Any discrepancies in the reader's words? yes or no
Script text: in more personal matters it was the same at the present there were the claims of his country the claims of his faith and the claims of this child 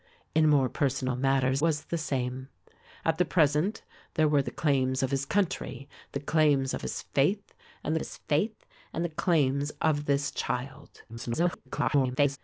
yes